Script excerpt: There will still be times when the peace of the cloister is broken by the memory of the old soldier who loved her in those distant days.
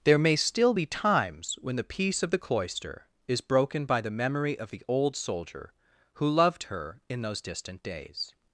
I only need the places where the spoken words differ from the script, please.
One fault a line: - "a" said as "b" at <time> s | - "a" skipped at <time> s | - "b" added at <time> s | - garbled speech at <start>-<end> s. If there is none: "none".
- "will" said as "may" at 0.2 s